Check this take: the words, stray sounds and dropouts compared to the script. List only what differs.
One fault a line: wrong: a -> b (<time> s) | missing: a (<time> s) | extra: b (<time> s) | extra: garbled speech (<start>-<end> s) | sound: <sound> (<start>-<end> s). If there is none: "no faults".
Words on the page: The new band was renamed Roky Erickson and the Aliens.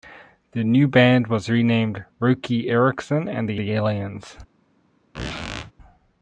extra: the (3.6 s)
sound: squeak (5.1-5.7 s)